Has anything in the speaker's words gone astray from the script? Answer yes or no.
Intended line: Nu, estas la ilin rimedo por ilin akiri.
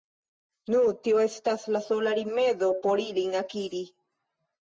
yes